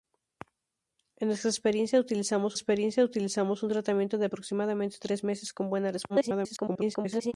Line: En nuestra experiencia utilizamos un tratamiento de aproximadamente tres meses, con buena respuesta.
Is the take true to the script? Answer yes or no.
no